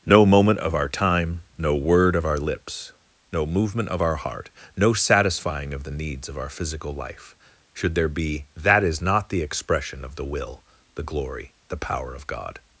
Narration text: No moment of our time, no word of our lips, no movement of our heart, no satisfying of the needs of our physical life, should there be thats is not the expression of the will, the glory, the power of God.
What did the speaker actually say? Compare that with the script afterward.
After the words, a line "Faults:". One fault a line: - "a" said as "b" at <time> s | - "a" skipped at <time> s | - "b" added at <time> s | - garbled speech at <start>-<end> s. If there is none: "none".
No moment of our time, no word of our lips, no movement of our heart, no satisfying of the needs of our physical life, should there be that is not the expression of the will, the glory, the power of God.
Faults:
- "thats" said as "that" at 8.6 s